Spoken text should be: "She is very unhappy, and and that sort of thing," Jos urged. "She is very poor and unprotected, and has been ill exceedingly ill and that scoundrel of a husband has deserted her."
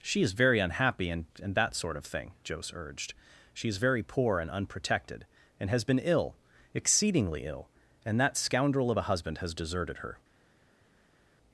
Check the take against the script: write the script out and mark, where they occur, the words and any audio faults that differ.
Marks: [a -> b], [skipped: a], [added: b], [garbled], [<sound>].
"She is very unhappy, and and that sort of thing," Jos urged. "She is very poor and unprotected, and has been ill exceedingly ill and that scoundrel of a husband has deserted her."